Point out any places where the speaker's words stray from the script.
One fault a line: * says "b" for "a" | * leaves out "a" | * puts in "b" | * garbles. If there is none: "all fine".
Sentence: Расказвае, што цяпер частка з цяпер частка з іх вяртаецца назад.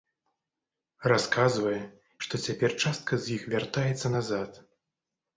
* leaves out "цяпер частка з"